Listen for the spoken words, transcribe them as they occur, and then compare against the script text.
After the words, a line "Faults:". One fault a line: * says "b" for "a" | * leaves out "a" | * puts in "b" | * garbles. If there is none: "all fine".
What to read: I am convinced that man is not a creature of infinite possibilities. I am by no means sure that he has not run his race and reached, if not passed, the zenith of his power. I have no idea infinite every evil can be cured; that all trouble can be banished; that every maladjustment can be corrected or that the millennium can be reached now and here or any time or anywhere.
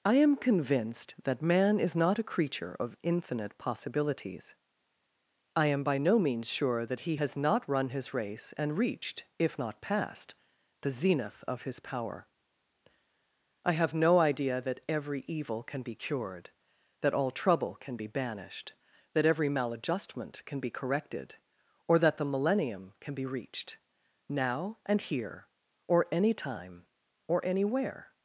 I am convinced that man is not a creature of infinite possibilities. I am by no means sure that he has not run his race and reached, if not passed, the zenith of his power. I have no idea that every evil can be cured; that all trouble can be banished; that every maladjustment can be corrected or that the millennium can be reached now and here or any time or anywhere.
Faults:
* says "that" for "infinite"